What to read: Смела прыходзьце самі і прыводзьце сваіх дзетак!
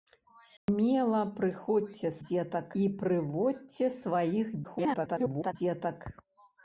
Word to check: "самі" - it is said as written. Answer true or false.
false